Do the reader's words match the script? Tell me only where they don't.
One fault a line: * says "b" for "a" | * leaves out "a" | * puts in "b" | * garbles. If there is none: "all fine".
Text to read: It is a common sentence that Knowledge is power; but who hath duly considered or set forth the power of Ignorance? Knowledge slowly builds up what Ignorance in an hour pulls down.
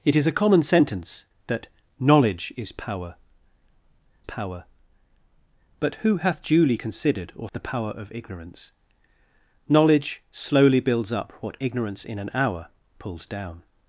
* puts in "power"
* leaves out "set forth"